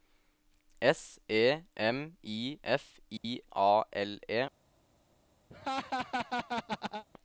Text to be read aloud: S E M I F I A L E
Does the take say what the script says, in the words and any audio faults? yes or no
no